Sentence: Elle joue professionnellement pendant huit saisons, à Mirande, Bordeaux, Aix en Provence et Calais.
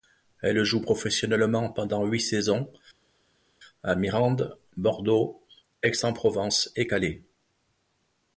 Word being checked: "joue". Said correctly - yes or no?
yes